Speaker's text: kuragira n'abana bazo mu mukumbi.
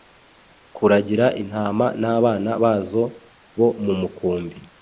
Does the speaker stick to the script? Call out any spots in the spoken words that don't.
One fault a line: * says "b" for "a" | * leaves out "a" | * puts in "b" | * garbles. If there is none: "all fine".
* puts in "intama"
* puts in "bo"